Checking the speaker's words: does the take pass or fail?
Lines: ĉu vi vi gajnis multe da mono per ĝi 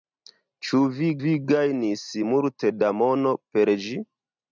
pass